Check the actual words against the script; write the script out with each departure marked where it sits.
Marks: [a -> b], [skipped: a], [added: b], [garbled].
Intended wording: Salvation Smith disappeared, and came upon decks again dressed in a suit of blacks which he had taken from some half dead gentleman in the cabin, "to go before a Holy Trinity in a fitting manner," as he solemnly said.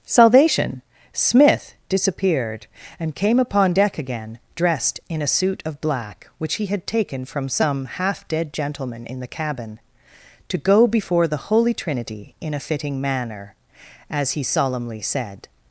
Salvation Smith disappeared, and came upon [decks -> deck] again dressed in a suit of [blacks -> black] which he had taken from some half dead gentleman in the cabin, "to go before [a -> the] Holy Trinity in a fitting manner," as he solemnly said.